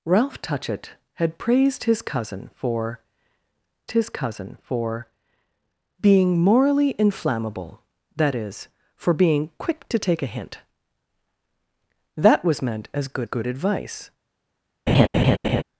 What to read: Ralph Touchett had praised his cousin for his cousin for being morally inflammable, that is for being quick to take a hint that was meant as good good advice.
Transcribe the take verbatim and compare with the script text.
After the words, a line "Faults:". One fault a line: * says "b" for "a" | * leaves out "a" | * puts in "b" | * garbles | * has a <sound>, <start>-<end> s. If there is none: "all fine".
Ralph Touchett had praised his cousin for his cousin for being morally inflammable, that is for being quick to take a hint that was meant as good good advice.
Faults:
* has a laugh, 14.9-15.6 s